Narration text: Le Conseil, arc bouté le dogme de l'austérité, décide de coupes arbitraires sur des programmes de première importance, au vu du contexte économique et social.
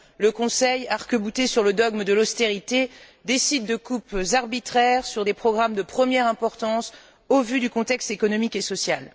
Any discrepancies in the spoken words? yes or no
yes